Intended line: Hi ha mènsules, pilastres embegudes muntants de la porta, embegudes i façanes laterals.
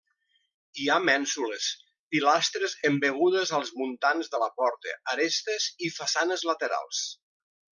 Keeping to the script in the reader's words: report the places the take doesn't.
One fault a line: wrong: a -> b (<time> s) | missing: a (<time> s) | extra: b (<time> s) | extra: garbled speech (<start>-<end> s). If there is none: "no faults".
extra: als (3.6 s)
wrong: embegudes -> arestes (5.2 s)